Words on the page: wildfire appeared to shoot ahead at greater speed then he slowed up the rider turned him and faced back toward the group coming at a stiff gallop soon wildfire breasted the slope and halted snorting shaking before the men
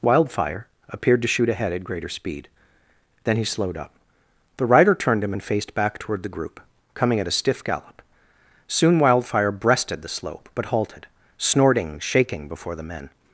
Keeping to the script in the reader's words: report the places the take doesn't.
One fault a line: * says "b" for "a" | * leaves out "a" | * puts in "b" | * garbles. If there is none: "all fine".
* says "but" for "and"